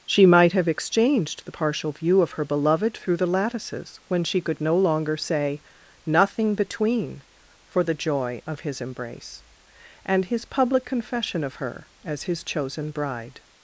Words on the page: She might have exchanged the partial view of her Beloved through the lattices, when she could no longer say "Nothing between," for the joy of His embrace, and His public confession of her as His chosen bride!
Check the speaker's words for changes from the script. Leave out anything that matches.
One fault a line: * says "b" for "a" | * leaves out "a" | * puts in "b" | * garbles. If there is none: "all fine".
all fine